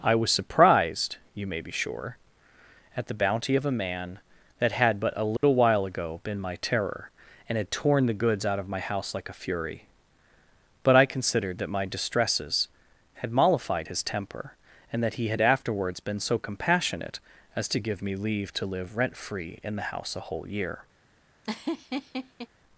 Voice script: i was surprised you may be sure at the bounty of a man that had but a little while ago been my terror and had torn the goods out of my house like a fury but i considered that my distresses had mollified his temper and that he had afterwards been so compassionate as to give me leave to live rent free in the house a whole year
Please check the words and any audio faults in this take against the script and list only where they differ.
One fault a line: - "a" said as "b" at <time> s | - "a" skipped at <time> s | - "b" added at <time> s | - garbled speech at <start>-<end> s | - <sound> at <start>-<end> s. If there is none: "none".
- dropout at 5.4-5.4 s
- laugh at 21.4-22.5 s